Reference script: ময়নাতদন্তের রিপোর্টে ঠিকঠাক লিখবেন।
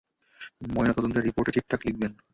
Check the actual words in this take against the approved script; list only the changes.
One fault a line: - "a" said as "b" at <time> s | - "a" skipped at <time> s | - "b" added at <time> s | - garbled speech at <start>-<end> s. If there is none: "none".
none